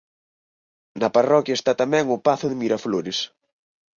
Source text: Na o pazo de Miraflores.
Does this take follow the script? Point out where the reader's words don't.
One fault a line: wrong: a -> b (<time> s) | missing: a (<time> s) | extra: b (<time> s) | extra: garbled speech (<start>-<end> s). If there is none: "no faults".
extra: parroquia está tamén (1.1 s)